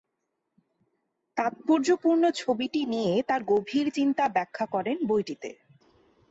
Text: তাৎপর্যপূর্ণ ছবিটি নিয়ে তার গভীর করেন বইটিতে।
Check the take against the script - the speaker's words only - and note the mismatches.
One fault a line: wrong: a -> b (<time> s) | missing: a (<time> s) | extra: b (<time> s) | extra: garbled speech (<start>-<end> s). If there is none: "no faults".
extra: চিন্তা ব্যাখ্যা (3.9 s)